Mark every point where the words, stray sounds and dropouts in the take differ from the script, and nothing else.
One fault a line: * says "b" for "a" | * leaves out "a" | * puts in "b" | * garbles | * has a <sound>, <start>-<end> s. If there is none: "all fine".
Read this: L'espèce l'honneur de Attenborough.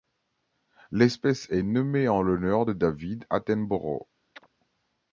* puts in "est nommée en"
* puts in "David"
* has a chirp, 4.4-4.5 s